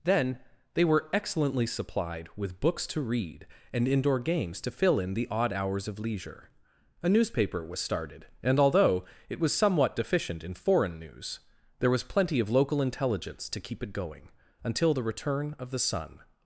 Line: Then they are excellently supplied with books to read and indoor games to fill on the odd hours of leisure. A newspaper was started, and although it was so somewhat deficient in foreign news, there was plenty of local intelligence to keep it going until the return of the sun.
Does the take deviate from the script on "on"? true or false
true